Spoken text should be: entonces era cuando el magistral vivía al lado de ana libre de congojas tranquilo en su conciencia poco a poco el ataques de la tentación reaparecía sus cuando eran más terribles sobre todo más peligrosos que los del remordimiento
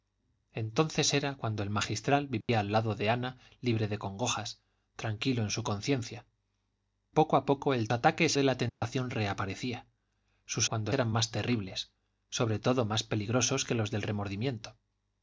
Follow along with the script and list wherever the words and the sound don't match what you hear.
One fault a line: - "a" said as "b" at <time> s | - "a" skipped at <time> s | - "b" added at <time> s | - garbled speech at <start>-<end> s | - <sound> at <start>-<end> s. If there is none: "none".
- dropout at 2.4-2.5 s
- dropout at 8.7-8.8 s